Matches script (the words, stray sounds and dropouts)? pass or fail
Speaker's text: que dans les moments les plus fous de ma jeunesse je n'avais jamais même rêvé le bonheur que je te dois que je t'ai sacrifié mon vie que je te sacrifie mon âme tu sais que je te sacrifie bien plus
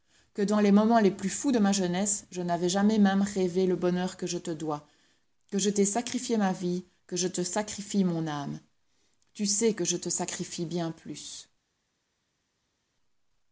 fail